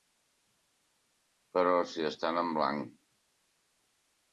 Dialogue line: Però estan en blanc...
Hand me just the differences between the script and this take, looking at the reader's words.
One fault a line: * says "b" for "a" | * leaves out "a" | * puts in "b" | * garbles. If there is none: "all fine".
* puts in "si"